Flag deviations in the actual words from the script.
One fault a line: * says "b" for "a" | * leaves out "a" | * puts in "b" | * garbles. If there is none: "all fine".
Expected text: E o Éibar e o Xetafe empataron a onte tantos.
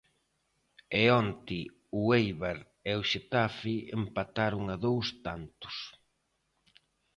* puts in "onte"
* says "dous" for "onte"